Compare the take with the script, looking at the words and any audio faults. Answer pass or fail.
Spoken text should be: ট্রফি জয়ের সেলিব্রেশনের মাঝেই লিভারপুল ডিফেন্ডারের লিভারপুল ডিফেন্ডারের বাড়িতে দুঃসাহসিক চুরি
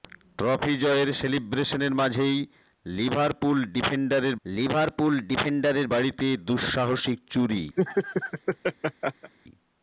fail